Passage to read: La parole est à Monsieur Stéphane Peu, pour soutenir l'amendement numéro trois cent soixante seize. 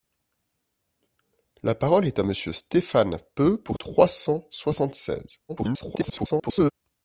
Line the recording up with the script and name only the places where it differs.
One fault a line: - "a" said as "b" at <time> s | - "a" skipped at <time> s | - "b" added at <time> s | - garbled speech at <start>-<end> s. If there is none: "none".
- "soutenir l'amendement numéro" skipped at 3.8 s
- garbled speech at 5.5-6.7 s